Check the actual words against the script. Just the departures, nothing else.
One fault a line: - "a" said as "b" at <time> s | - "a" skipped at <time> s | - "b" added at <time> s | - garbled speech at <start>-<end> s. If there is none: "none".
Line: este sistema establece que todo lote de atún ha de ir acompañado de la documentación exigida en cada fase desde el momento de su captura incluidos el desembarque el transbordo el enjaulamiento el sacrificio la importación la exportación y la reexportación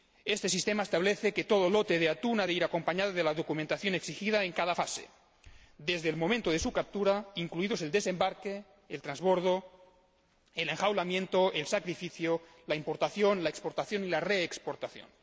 none